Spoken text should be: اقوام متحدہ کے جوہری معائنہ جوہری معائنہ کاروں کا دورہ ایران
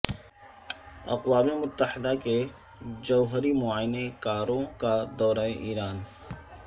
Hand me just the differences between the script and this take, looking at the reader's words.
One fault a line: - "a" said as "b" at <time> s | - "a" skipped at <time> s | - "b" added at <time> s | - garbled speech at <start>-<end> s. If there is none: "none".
- "جوہری معائنہ" skipped at 4.1 s